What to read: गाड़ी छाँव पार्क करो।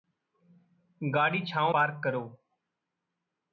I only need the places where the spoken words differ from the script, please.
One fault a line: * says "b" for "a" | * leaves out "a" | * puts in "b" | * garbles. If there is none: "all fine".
all fine